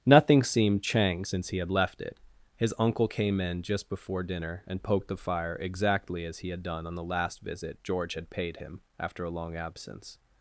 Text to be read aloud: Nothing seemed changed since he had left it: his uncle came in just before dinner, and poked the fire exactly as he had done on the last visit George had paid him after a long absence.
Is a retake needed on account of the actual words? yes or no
yes